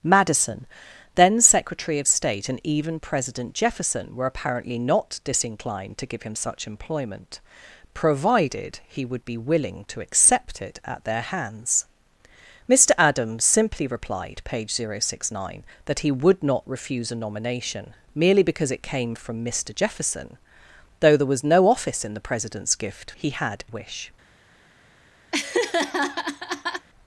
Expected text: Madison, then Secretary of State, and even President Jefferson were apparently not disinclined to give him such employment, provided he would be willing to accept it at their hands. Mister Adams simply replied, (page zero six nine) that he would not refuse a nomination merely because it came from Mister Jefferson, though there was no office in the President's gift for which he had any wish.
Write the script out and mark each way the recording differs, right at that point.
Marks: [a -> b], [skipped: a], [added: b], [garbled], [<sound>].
Madison, then Secretary of State, and even President Jefferson were apparently not disinclined to give him such employment, provided he would be willing to accept it at their hands. Mister Adams simply replied, (page zero six nine) that he would not refuse a nomination merely because it came from Mister Jefferson, though there was no office in the President's gift [skipped: for which] he had [skipped: any] wish. [laugh]